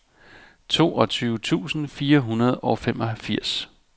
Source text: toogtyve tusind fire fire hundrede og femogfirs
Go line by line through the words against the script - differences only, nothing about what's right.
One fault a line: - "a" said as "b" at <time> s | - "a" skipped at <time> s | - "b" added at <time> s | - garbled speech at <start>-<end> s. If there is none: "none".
- "fire" skipped at 2.2 s